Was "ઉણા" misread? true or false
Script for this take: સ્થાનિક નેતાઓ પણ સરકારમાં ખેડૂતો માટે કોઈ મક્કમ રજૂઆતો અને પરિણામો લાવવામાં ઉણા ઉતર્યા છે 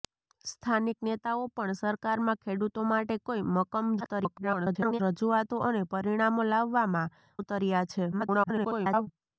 true